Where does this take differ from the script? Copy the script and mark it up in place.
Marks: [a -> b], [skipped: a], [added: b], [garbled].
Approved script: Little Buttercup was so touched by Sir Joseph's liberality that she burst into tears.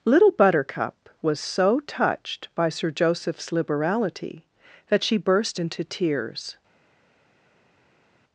Little Buttercup was so touched by Sir Joseph's liberality that she burst into tears.